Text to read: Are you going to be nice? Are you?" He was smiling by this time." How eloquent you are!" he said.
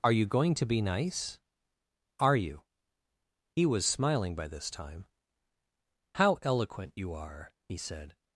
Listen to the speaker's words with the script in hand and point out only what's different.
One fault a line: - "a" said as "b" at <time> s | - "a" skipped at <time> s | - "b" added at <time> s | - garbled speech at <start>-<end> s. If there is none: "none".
none